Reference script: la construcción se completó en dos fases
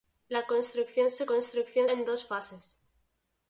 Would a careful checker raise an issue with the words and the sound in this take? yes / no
yes